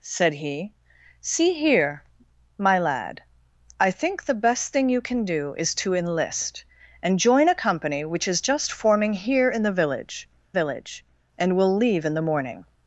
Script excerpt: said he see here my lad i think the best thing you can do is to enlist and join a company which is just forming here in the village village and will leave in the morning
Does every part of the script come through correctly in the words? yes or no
yes